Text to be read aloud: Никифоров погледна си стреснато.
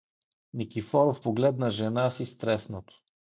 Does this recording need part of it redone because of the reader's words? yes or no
yes